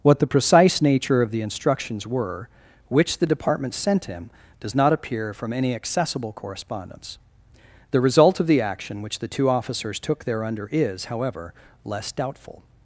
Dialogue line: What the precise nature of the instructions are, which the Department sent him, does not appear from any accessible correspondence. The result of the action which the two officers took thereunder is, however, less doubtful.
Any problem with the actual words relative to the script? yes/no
yes